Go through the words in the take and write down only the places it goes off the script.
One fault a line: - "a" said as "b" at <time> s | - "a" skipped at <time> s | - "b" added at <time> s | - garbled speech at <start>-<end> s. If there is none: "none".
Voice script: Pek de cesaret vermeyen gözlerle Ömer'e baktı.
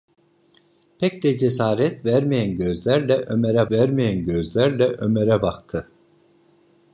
- "vermeyen gözlerle Ömer'e" added at 3.7 s